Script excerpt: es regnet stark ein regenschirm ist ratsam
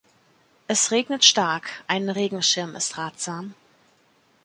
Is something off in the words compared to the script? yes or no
no